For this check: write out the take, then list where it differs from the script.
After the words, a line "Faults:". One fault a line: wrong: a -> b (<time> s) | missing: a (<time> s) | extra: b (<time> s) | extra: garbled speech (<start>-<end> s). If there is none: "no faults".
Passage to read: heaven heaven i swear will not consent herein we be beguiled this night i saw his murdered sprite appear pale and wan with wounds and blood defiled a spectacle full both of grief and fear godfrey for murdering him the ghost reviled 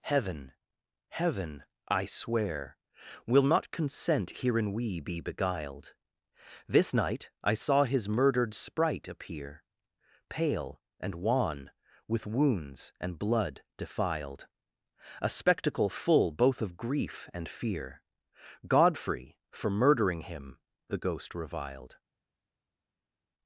heaven heaven i swear will not consent herein we be beguiled this night i saw his murdered sprite appear pale and wan with wounds and blood defiled a spectacle full both of grief and fear godfrey for murdering him the ghost reviled
Faults:
no faults